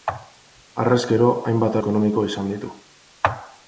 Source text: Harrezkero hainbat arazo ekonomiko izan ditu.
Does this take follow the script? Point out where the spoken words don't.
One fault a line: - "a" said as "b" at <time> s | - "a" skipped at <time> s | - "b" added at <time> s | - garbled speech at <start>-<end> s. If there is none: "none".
- "arazo" skipped at 1.8 s